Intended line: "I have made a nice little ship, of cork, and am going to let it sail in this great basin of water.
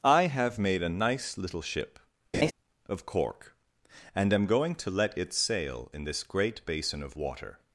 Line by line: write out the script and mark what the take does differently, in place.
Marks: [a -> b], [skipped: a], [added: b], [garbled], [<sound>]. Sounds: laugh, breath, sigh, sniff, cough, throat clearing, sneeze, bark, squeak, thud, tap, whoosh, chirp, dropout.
"I have made a nice little ship, [laugh] of cork, and am going to let it sail in this great basin of water.